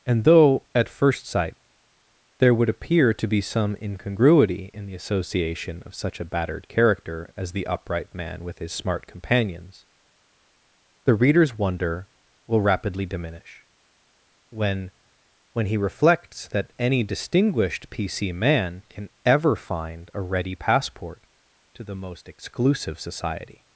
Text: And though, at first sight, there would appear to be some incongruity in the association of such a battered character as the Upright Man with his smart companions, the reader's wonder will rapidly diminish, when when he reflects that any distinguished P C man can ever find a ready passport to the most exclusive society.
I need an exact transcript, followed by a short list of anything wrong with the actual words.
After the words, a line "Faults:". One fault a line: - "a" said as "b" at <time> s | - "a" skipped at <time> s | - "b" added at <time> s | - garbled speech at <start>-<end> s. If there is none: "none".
And though, at first sight, there would appear to be some incongruity in the association of such a battered character as the Upright Man with his smart companions, the reader's wonder will rapidly diminish, when when he reflects that any distinguished P C man can ever find a ready passport to the most exclusive society.
Faults:
none